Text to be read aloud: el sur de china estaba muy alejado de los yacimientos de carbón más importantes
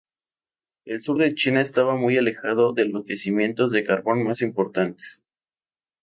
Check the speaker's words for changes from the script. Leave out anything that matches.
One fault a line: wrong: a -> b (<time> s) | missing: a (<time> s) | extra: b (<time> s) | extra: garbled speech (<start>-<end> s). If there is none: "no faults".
no faults